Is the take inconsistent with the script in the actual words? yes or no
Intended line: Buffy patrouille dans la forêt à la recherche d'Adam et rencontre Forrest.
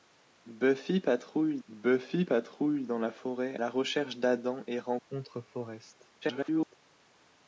yes